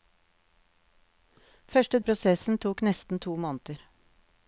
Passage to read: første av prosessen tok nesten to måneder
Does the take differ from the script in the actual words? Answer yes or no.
no